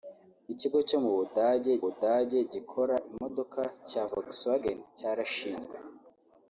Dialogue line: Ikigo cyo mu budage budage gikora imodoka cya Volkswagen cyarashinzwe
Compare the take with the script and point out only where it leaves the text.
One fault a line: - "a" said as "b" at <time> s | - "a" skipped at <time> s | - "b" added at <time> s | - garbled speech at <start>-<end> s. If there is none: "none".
none